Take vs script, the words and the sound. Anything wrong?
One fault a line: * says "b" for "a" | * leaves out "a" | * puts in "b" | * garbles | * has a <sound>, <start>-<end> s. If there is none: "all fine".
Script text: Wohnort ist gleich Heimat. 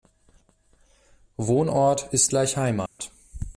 * has a dropout, 2.9-3.0 s